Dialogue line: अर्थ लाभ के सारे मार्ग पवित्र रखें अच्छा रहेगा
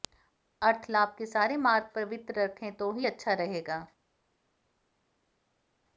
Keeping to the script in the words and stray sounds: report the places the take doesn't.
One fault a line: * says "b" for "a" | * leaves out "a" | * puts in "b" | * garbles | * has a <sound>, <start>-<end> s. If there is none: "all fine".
* puts in "तो ही"